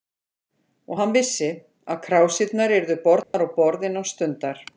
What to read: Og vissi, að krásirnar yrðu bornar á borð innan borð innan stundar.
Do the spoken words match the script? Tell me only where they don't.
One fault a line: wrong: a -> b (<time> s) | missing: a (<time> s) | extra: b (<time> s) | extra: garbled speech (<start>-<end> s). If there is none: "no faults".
extra: hann (1.0 s)
missing: borð innan (4.1 s)